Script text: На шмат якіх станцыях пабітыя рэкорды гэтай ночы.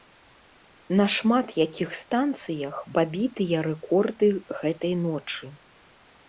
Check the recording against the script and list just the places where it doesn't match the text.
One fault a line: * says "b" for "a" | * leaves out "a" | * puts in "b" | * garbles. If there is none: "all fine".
all fine